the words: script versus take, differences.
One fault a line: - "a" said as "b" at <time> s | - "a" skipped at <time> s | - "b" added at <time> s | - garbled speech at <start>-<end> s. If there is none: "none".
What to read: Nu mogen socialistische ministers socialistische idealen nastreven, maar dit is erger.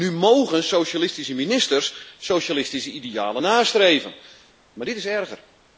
none